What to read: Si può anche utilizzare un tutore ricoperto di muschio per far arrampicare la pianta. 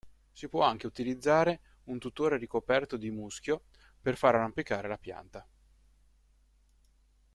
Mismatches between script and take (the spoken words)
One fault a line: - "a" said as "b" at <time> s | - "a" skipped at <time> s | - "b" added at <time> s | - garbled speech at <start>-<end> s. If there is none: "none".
none